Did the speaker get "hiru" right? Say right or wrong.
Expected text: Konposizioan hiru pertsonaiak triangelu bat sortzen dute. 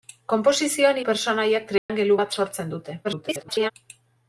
wrong